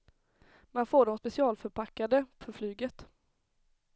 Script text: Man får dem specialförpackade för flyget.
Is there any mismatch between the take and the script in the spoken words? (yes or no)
no